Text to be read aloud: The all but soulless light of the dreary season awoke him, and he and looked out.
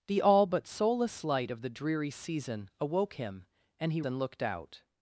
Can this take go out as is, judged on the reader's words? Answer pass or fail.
pass